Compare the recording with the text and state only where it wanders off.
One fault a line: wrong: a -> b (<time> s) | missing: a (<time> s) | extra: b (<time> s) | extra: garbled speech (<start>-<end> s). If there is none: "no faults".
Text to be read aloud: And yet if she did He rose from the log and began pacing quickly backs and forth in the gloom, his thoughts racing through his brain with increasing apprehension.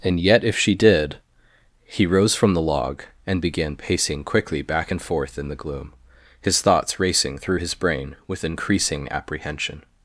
wrong: backs -> back (4.6 s)